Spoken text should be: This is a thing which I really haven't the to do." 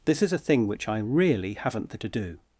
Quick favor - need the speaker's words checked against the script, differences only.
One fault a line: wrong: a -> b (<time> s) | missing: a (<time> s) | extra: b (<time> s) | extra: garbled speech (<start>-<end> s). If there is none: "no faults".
no faults